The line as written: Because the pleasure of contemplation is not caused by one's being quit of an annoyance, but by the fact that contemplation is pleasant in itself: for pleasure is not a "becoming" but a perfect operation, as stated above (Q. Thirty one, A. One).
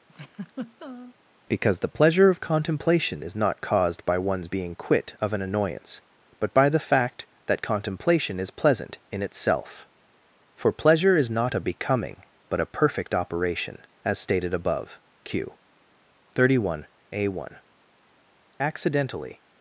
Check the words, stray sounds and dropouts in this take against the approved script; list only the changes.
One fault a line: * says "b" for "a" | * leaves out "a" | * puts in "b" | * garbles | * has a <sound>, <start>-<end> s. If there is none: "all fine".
* has a laugh, 0.1-1.1 s
* puts in "Accidentally"